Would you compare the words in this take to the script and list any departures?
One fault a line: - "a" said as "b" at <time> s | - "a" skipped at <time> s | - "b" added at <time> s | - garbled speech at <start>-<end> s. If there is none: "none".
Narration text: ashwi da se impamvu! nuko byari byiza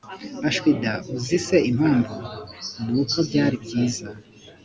- "uzi" added at 1.1 s